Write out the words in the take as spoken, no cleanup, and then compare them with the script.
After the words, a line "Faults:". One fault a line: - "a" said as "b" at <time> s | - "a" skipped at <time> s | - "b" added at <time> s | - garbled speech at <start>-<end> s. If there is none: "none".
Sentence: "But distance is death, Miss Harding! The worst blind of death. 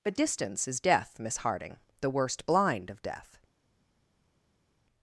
"But distance is death, Miss Harding! The worst blind of death.
Faults:
none